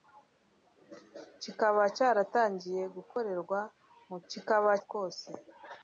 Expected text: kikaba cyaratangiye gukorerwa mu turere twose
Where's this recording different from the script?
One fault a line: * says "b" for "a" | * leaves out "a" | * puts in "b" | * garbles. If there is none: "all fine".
* says "kikaba" for "turere"